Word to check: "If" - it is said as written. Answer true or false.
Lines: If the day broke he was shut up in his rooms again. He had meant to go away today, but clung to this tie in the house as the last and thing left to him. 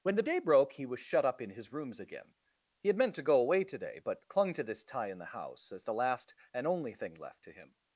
false